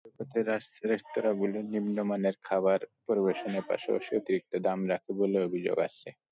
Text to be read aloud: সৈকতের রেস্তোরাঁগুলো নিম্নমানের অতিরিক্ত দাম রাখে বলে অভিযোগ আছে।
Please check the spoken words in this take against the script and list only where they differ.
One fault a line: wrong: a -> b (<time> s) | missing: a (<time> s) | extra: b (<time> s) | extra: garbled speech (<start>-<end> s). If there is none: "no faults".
extra: খাবার পরিবেশনের পাশাপাশি (2.4 s)